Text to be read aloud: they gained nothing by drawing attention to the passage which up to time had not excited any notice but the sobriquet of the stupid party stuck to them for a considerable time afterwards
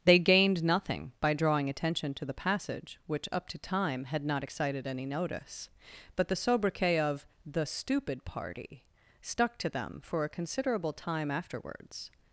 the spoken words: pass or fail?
pass